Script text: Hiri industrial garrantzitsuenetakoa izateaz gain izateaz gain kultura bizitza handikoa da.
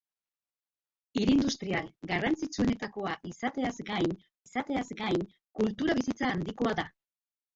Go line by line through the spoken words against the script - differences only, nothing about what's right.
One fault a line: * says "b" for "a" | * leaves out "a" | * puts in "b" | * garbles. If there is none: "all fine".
all fine